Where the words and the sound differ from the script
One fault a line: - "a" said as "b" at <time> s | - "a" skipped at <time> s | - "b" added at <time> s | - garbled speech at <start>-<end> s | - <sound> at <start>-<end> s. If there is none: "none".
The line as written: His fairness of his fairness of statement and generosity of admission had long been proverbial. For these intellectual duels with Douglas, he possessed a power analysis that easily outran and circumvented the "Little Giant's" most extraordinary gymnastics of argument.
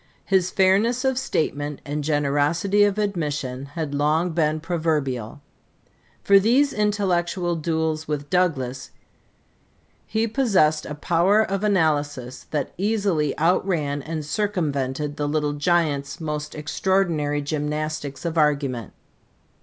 - "his fairness of" skipped at 1.2 s
- "of" added at 11.4 s